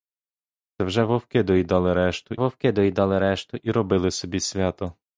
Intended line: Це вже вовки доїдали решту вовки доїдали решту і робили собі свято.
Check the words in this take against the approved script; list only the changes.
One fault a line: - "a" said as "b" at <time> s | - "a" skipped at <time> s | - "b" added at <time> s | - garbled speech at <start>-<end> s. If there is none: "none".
none